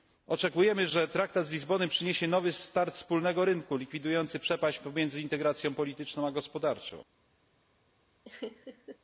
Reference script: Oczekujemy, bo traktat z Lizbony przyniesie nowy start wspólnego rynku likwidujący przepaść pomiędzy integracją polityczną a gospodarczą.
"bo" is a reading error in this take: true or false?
true